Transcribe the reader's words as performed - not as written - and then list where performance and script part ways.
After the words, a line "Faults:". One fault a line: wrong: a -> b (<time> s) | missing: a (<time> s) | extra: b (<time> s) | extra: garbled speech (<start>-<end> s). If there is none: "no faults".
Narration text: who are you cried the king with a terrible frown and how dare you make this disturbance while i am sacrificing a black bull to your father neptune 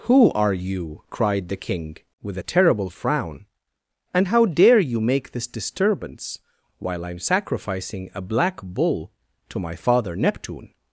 who are you cried the king with a terrible frown and how dare you make this disturbance while i am sacrificing a black bull to my father neptune
Faults:
wrong: your -> my (9.6 s)